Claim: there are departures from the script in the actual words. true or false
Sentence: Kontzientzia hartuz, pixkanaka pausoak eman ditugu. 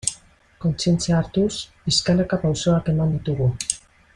false